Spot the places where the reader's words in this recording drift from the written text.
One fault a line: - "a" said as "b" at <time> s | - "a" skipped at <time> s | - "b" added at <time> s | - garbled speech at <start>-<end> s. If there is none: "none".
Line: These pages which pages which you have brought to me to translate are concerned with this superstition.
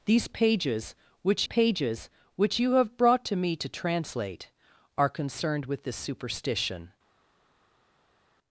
none